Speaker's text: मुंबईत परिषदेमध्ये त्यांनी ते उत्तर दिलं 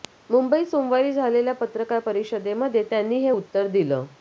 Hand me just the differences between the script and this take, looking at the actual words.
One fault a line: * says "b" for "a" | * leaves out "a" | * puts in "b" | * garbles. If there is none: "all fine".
* puts in "सोमवारी झालेल्या पत्रकार"
* says "हे" for "ते"